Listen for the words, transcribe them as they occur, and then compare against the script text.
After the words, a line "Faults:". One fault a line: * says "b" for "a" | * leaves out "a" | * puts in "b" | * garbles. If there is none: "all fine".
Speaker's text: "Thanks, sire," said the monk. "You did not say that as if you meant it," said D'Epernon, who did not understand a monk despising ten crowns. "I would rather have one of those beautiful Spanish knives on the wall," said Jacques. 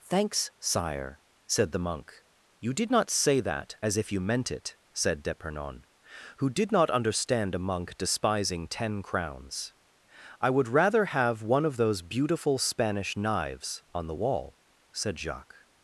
"Thanks, sire," said the monk. "You did not say that as if you meant it," said D'Epernon, who did not understand a monk despising ten crowns. "I would rather have one of those beautiful Spanish knives on the wall," said Jacques.
Faults:
all fine